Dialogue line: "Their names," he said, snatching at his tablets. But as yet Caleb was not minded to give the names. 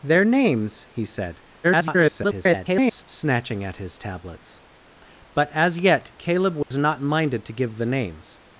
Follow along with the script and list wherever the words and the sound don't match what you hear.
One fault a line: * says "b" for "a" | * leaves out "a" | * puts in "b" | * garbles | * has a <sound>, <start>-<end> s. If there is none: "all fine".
* garbles
* has a dropout, 6.6-6.7 s